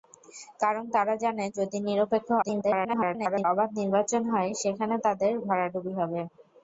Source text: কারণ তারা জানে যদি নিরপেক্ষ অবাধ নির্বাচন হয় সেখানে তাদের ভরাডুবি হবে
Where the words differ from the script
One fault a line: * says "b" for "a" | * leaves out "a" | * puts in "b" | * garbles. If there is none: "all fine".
* garbles